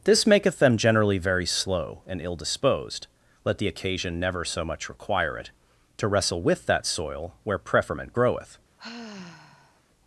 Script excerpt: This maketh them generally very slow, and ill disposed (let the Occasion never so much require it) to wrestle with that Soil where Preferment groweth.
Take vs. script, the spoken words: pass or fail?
pass